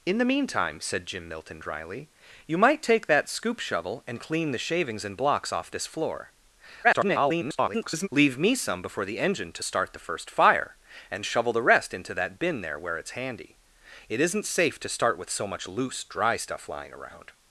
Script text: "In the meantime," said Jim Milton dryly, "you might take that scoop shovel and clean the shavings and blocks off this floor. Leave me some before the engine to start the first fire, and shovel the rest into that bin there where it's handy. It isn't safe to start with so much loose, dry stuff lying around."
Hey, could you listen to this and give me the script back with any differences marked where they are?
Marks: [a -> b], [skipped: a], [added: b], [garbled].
"In the meantime," said Jim Milton dryly, "you might take that scoop shovel and clean the shavings and blocks off this floor. [garbled] Leave me some before the engine to start the first fire, and shovel the rest into that bin there where it's handy. It isn't safe to start with so much loose, dry stuff lying around."